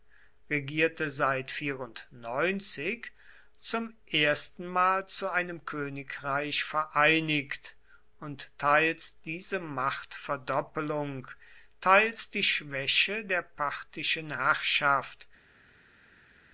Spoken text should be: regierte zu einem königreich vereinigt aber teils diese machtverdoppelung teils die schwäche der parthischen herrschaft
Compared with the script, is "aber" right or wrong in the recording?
wrong